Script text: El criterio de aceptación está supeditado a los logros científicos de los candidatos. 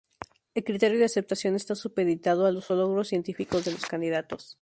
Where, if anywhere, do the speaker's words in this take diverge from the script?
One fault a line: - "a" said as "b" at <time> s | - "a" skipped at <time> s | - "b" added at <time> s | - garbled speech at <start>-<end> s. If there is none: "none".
none